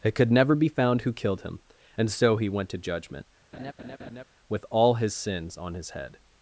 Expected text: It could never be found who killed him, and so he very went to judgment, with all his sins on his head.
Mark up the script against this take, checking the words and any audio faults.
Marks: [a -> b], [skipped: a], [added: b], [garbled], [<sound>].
It could never be found who killed him, and so he [skipped: very] went to judgment, [laugh] with all his sins on his head.